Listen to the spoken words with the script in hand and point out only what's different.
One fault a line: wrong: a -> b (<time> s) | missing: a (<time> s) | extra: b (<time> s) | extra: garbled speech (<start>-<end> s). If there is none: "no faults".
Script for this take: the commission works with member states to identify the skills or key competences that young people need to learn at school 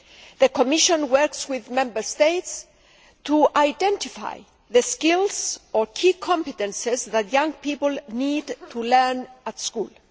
no faults